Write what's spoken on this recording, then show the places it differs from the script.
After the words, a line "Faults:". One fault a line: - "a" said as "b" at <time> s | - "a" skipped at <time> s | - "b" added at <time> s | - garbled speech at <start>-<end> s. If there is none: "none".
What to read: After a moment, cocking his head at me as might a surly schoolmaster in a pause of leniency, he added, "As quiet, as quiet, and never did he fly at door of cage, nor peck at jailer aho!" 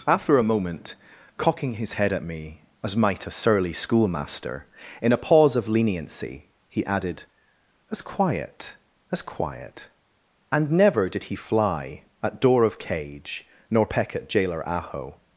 After a moment, cocking his head at me as might a surly schoolmaster in a pause of leniency, he added, "As quiet, as quiet, and never did he fly at door of cage, nor peck at jailer aho!"
Faults:
none